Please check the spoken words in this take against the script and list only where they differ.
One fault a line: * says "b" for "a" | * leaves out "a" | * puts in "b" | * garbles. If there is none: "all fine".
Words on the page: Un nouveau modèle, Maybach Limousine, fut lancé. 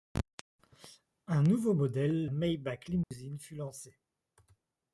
all fine